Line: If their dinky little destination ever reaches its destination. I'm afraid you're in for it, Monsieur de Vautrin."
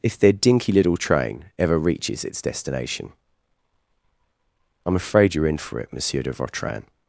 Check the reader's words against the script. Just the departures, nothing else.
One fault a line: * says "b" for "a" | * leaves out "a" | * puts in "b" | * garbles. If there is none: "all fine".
* says "train" for "destination"